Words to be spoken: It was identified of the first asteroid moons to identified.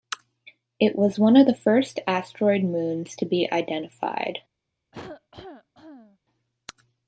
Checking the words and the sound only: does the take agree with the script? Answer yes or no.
no